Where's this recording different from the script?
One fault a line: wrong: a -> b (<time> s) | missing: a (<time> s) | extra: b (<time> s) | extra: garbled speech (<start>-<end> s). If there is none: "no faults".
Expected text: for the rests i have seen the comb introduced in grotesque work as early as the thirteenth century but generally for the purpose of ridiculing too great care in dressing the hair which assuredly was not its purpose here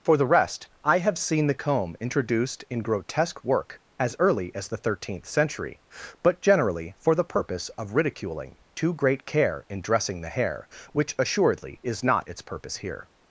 wrong: rests -> rest (0.2 s)
wrong: was -> is (11.8 s)